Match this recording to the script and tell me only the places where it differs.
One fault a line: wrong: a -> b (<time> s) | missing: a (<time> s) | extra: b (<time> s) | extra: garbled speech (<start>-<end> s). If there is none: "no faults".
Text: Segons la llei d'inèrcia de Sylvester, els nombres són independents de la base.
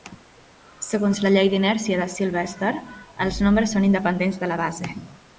no faults